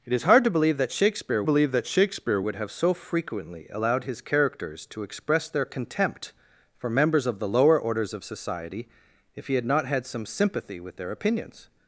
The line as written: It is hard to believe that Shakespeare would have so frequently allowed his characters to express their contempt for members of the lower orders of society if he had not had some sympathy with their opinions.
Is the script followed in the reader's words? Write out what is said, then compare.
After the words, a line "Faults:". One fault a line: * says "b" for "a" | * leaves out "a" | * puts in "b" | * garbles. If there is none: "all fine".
It is hard to believe that Shakespeare believe that Shakespeare would have so frequently allowed his characters to express their contempt for members of the lower orders of society if he had not had some sympathy with their opinions.
Faults:
* puts in "believe that Shakespeare"